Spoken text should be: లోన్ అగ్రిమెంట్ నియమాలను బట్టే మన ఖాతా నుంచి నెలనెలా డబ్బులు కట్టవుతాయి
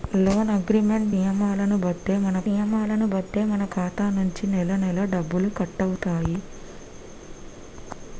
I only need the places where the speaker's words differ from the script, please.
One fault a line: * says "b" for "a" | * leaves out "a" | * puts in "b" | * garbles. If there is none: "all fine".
* puts in "నియమాలను బట్టే మన"